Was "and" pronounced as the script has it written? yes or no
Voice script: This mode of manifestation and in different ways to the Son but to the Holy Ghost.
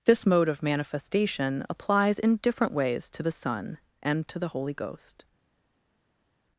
no